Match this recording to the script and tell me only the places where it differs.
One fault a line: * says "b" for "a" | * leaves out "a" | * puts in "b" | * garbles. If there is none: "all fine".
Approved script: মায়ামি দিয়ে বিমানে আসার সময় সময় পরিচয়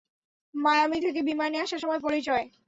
* says "থেকে" for "দিয়ে"
* leaves out "সময়"